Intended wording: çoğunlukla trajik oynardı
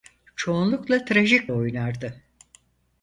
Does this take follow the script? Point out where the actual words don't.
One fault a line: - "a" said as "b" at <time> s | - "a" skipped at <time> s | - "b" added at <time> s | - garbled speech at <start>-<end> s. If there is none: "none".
none